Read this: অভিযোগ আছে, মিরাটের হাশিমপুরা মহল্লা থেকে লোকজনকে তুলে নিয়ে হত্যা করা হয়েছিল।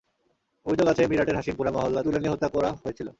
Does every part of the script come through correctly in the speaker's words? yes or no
no